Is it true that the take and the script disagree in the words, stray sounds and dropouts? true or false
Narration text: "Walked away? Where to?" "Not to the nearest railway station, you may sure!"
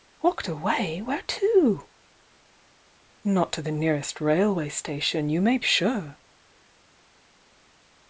false